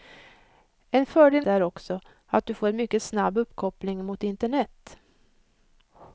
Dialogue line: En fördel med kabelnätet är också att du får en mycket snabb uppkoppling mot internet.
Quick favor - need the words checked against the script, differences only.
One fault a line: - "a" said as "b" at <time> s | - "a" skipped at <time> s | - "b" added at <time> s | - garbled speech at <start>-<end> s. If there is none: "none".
- "med kabelnätet" skipped at 1.4 s